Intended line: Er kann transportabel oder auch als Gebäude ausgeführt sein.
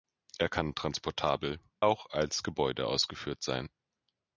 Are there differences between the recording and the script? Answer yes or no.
yes